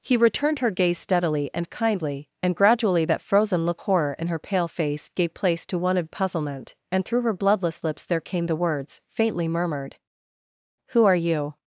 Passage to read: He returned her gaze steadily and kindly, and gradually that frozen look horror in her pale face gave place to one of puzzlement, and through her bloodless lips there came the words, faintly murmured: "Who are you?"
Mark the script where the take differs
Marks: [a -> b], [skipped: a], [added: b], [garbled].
He returned her gaze steadily and kindly, and gradually that frozen look horror in her pale face gave place to one of puzzlement, and through her bloodless lips there came the words, faintly murmured: "Who are you?"